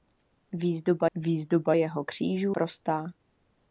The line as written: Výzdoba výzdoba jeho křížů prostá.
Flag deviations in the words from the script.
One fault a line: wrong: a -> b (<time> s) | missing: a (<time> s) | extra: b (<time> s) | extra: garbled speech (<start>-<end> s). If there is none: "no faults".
no faults